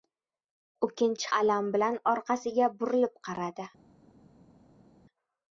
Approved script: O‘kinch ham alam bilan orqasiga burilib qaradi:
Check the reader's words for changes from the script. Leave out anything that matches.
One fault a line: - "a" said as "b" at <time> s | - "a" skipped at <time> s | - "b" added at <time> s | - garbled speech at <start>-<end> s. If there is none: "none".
- "ham" skipped at 1.2 s